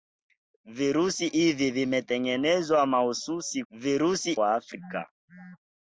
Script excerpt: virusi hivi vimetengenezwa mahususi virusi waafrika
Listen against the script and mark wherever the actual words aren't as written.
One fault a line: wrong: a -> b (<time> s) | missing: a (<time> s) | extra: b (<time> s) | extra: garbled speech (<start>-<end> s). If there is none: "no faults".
no faults